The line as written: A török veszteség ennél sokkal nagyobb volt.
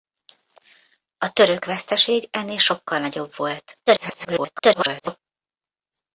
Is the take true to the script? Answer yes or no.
no